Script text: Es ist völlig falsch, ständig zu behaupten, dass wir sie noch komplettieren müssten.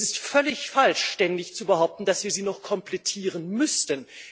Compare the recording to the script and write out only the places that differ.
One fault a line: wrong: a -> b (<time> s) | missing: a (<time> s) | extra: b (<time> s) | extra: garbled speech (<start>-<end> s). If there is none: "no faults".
no faults